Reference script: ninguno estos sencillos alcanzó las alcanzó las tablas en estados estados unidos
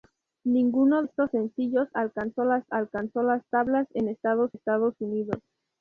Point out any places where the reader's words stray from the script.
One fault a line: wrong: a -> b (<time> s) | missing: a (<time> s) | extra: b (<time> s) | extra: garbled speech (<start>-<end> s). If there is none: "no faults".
no faults